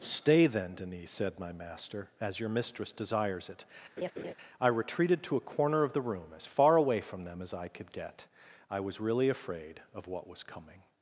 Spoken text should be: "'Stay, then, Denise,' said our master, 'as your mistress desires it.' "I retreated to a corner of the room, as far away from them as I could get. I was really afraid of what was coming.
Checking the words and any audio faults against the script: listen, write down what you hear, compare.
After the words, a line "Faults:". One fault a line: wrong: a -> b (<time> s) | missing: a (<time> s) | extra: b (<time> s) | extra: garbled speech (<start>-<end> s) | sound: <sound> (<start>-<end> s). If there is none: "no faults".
"'Stay, then, Denise,' said my master, 'as your mistress desires it.' "I retreated to a corner of the room, as far away from them as I could get. I was really afraid of what was coming.
Faults:
wrong: our -> my (1.4 s)
sound: laugh (4.0-4.3 s)